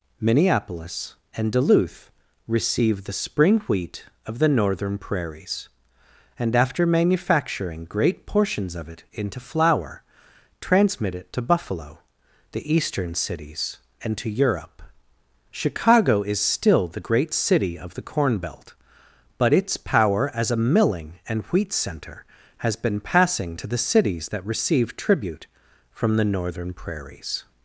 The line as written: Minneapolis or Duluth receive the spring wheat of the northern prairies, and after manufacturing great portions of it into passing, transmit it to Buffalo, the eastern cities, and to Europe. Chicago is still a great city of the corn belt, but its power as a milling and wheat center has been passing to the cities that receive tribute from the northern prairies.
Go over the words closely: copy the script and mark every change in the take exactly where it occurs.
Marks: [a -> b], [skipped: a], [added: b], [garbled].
Minneapolis [or -> and] Duluth receive the spring wheat of the northern prairies, and after manufacturing great portions of it into [passing, -> flour] transmit it to Buffalo, the eastern cities, and to Europe. Chicago is still [a -> the] great city of the corn belt, but its power as a milling and wheat center has been passing to the cities that receive tribute from the northern prairies.